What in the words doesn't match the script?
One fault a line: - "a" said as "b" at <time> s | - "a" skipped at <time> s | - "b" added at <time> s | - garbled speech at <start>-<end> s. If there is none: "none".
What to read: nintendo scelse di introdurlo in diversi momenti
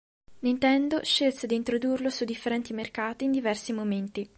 - "su differenti mercati" added at 2.1 s